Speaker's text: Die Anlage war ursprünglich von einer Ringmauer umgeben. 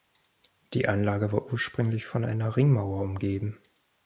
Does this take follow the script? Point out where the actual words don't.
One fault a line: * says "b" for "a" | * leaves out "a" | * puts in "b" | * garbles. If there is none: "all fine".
all fine